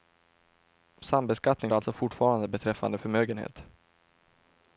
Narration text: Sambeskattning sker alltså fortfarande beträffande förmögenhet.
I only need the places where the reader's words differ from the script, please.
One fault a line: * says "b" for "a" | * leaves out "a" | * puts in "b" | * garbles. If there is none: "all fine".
* leaves out "sker"